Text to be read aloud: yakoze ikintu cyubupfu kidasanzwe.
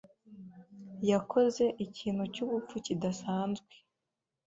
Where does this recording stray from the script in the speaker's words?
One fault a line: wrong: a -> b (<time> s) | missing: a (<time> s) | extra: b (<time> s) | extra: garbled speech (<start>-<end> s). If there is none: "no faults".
no faults